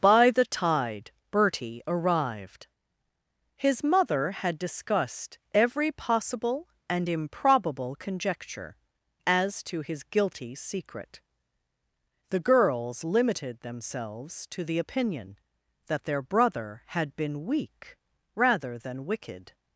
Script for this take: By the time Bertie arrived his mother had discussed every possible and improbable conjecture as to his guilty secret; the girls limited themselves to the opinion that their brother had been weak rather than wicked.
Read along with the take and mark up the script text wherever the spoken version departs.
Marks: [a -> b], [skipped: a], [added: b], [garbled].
By the [time -> tide] Bertie arrived his mother had discussed every possible and improbable conjecture as to his guilty secret; the girls limited themselves to the opinion that their brother had been weak rather than wicked.